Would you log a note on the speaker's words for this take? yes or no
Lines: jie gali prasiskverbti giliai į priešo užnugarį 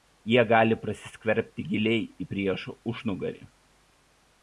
no